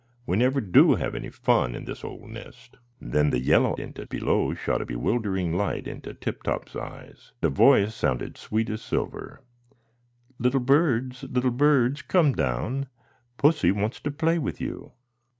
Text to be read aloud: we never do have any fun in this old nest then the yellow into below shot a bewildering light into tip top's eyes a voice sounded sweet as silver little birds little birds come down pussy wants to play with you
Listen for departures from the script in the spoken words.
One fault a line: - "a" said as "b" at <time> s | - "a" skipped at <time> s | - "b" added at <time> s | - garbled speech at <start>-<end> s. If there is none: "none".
none